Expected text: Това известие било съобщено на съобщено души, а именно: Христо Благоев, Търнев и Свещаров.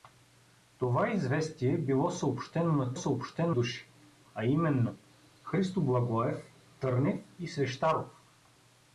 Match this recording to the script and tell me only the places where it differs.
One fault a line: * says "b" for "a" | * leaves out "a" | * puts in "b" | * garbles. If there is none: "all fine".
all fine